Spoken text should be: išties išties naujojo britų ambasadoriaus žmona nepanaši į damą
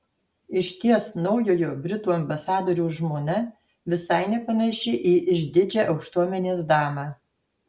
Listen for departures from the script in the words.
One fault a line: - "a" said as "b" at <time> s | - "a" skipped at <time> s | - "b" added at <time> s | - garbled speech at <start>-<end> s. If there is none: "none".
- "išties" skipped at 1.0 s
- "visai" added at 4.0 s
- "išdidžią aukštuomenės" added at 5.4 s